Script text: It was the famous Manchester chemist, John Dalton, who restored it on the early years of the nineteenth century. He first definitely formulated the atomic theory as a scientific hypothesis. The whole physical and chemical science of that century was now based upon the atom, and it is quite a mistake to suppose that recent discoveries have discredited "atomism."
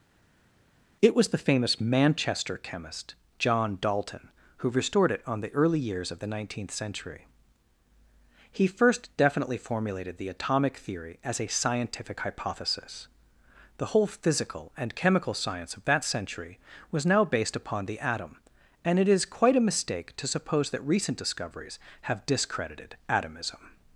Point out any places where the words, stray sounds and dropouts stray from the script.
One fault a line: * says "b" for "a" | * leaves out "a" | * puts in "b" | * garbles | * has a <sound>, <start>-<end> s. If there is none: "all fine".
all fine